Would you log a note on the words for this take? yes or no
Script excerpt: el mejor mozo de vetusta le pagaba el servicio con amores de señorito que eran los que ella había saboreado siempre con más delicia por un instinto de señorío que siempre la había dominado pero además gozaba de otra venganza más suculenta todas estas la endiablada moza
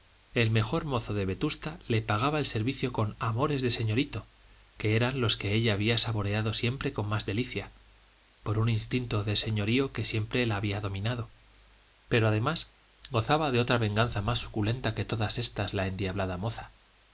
yes